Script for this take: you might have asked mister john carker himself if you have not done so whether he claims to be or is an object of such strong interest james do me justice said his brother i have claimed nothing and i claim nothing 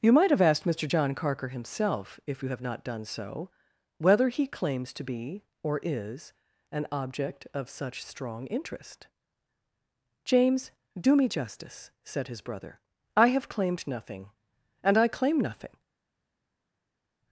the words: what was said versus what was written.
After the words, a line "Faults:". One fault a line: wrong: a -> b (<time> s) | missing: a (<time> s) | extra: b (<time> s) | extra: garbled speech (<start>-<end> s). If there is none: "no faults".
you might have asked mister john carker himself if you have not done so whether he claims to be or is an object of such strong interest james do me justice said his brother i have claimed nothing and i claim nothing
Faults:
no faults